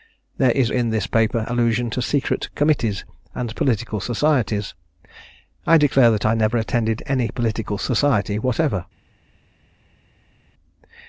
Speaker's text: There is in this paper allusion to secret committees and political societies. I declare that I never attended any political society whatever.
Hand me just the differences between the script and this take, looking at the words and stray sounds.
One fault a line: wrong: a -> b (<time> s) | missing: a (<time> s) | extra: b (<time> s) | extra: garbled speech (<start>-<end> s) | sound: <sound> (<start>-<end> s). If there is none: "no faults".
no faults